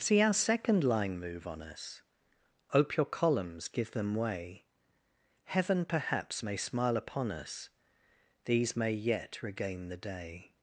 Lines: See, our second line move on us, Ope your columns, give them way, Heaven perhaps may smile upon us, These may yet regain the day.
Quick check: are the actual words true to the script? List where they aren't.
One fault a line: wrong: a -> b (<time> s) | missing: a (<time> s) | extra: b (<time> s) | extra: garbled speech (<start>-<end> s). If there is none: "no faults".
no faults